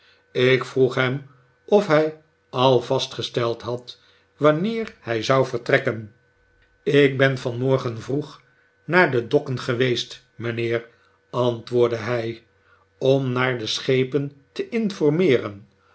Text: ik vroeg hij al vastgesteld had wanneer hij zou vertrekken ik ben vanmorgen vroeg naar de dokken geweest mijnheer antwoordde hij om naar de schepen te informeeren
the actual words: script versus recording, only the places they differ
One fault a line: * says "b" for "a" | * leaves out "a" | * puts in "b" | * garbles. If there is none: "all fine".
* puts in "hem of"